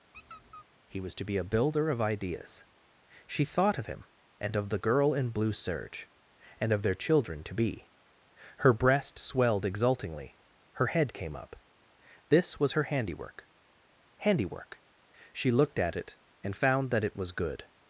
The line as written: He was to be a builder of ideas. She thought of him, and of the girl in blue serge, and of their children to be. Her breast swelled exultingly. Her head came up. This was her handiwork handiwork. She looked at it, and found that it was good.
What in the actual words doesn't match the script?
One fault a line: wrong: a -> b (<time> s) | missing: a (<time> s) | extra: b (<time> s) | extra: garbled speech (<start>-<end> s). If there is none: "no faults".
no faults